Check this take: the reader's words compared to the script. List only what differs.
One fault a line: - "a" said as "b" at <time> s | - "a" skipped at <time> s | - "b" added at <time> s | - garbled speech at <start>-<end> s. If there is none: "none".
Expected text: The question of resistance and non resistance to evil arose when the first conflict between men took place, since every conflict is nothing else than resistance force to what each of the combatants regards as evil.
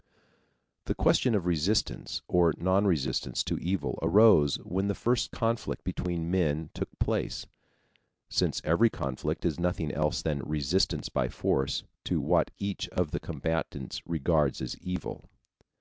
- "and" said as "or" at 2.3 s
- "by" added at 11.1 s